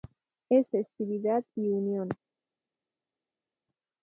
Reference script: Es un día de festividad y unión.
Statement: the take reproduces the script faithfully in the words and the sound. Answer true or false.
false